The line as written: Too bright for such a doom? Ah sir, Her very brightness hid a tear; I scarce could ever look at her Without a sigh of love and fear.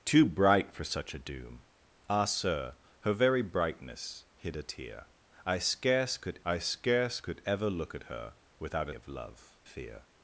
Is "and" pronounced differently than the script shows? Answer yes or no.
yes